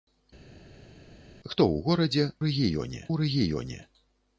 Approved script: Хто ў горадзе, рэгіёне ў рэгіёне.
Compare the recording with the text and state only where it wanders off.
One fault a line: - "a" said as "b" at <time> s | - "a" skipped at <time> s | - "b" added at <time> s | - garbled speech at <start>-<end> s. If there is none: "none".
none